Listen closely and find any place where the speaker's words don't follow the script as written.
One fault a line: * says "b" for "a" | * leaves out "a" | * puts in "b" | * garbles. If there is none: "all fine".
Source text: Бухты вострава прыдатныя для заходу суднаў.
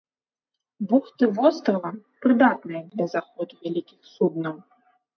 * puts in "вялікіх"